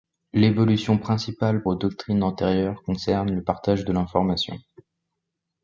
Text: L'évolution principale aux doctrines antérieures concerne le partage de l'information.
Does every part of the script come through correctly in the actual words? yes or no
yes